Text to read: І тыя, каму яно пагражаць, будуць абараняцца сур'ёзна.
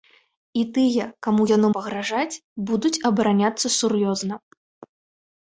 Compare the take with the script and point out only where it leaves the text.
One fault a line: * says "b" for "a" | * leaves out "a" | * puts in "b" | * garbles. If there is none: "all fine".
all fine